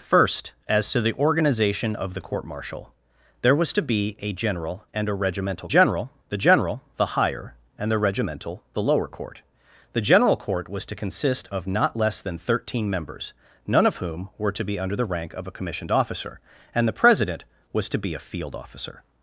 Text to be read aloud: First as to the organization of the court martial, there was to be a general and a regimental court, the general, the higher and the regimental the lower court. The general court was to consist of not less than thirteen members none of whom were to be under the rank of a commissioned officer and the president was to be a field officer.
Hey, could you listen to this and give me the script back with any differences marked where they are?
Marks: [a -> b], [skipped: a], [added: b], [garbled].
First as to the organization of the court martial, there was to be a general and a regimental [court, -> general] the general, the higher and the regimental the lower court. The general court was to consist of not less than thirteen members none of whom were to be under the rank of a commissioned officer and the president was to be a field officer.